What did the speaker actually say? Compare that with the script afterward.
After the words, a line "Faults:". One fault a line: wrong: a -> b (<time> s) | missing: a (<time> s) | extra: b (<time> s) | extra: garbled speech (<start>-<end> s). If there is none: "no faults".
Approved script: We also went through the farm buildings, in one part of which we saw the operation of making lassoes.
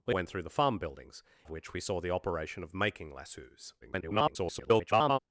We went through the farm buildings, of which we saw the operation of making lassoes. [garbled]
Faults:
missing: also (0.1 s)
missing: in one part (1.2 s)
extra: garbled speech (3.8-5.2 s)